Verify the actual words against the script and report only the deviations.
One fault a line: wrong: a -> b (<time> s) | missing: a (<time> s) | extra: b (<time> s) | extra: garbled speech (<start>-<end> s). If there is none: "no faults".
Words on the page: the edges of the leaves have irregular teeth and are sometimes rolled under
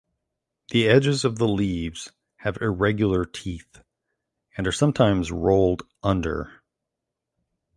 no faults